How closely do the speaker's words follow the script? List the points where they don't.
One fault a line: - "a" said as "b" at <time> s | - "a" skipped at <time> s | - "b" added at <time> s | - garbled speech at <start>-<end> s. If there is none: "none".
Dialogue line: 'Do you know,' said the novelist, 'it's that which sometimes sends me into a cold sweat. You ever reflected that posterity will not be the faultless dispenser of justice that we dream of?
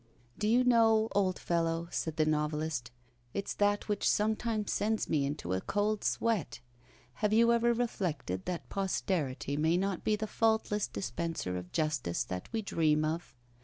- "old fellow" added at 1.1 s
- "Have" added at 7.2 s
- "will" said as "may" at 9.6 s